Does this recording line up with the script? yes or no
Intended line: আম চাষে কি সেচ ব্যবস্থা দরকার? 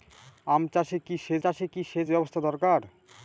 no